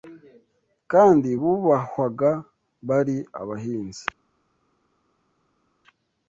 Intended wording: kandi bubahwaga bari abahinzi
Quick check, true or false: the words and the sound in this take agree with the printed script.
true